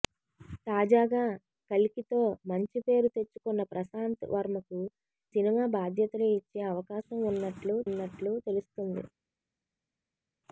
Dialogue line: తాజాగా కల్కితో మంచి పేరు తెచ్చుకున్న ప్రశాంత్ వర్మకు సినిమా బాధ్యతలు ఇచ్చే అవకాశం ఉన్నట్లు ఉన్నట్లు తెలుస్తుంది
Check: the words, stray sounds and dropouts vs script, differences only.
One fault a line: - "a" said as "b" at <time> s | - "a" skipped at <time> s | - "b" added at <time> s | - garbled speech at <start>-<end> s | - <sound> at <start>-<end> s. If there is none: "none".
none